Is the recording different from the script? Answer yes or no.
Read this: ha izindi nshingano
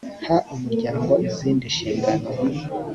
yes